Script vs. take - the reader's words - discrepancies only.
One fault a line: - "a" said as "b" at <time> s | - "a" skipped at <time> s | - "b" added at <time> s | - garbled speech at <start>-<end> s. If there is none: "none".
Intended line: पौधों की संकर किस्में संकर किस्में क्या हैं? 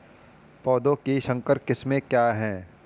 - "संकर किस्में" skipped at 2.0 s